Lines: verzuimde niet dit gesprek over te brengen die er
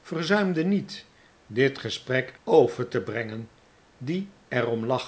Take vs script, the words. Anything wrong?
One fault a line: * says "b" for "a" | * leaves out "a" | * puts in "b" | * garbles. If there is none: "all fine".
all fine